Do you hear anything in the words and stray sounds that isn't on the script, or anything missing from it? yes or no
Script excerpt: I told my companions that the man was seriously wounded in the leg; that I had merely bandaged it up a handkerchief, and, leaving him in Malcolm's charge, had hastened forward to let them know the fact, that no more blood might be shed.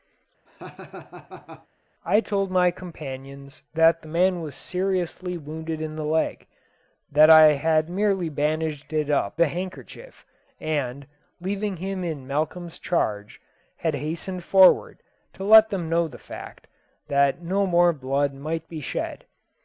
yes